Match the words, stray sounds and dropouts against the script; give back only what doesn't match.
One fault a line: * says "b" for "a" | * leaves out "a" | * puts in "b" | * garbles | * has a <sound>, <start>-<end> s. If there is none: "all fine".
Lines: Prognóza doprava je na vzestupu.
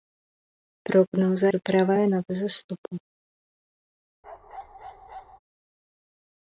* has a bark, 4.2-5.4 s